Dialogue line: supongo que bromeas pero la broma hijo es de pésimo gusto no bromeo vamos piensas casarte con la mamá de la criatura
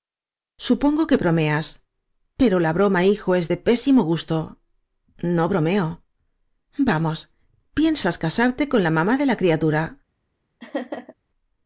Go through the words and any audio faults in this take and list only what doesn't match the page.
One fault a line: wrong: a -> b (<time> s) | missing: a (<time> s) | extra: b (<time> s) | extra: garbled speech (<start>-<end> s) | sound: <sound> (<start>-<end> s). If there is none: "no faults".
sound: laugh (10.6-11.1 s)